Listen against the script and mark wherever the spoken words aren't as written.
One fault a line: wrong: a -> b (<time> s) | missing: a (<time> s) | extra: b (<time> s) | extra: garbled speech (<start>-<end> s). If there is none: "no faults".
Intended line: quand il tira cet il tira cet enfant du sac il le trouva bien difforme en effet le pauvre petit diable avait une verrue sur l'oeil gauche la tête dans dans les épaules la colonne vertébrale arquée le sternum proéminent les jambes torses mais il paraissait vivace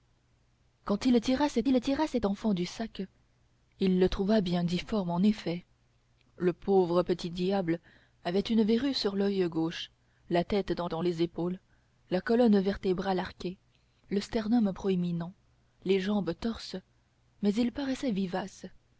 no faults